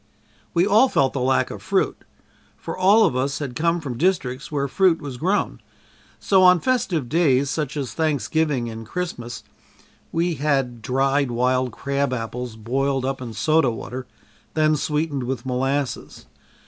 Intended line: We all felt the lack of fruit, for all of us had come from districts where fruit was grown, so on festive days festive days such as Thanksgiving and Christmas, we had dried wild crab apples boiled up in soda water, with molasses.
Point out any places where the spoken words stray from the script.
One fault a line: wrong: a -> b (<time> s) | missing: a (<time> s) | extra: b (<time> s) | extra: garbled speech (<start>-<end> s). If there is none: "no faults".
missing: festive days (7.5 s)
extra: then sweetened (14.6 s)